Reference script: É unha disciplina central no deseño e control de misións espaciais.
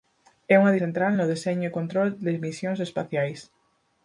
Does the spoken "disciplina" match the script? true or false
false